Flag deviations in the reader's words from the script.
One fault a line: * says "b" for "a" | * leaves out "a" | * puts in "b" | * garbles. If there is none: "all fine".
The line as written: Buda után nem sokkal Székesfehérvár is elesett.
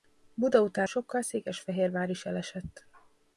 * leaves out "nem"